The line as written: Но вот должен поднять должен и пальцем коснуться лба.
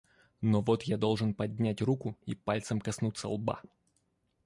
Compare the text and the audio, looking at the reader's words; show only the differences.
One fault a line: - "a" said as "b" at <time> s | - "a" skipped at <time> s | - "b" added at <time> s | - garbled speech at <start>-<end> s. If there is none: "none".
- "я" added at 0.8 s
- "должен" said as "руку" at 1.8 s